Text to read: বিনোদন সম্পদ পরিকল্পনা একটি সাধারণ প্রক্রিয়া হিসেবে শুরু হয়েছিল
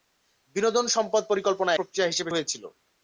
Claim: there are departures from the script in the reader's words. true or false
true